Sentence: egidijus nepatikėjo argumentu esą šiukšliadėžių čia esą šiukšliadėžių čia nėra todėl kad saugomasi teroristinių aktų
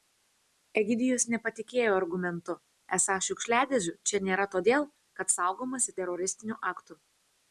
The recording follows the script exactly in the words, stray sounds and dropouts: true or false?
false